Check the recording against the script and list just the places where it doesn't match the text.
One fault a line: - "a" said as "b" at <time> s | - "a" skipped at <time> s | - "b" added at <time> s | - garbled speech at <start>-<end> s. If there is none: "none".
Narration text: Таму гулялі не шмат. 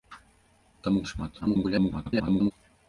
- "гулялі" skipped at 1.1 s
- garbled speech at 1.4-2.5 s